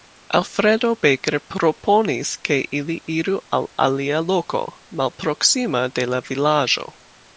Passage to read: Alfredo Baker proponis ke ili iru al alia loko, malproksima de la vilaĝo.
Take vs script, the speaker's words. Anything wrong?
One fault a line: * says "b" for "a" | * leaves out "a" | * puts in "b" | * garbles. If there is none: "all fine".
all fine